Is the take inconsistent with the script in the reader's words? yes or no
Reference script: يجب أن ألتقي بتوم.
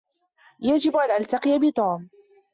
no